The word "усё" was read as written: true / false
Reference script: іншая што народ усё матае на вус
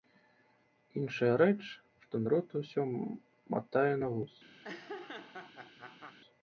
true